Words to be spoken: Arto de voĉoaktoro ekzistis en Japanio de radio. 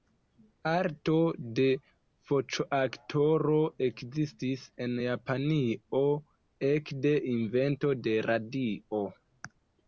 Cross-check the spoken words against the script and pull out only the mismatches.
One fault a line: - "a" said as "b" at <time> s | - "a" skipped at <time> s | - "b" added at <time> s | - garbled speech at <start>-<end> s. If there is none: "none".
- "ekde invento" added at 6.7 s